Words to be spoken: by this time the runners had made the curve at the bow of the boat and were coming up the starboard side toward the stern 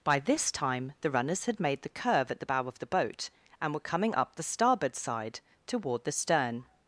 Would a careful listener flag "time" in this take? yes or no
no